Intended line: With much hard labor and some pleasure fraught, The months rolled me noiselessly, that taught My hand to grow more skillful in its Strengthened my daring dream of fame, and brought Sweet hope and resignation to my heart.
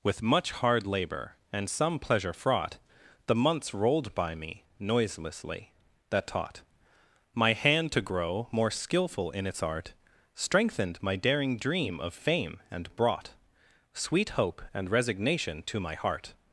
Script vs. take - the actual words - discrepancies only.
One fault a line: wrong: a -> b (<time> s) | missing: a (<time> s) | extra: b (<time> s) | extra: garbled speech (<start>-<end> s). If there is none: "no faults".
extra: by (4.2 s)
extra: art (9.6 s)